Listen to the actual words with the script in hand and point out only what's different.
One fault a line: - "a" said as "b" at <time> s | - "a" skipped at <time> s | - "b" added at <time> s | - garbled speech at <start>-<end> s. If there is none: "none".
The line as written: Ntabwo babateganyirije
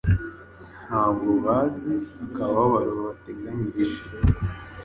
- "bazi akababaro" added at 1.4 s